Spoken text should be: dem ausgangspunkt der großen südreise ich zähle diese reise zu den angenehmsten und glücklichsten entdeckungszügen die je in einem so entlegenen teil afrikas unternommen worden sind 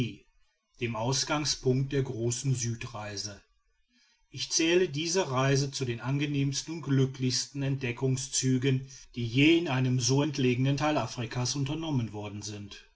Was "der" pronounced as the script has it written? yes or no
yes